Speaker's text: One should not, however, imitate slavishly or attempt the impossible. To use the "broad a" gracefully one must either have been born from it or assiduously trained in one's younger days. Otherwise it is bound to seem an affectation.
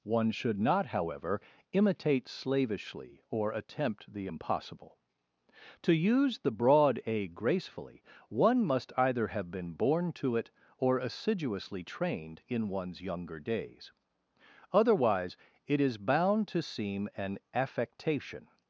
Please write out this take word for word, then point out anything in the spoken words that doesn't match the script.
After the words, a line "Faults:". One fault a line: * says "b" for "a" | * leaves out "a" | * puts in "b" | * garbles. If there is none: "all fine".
One should not, however, imitate slavishly or attempt the impossible. To use the "broad a" gracefully one must either have been born to it or assiduously trained in one's younger days. Otherwise it is bound to seem an affectation.
Faults:
* says "to" for "from"